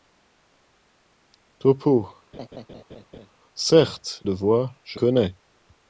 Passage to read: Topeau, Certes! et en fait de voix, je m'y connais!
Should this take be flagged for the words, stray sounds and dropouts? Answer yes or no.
yes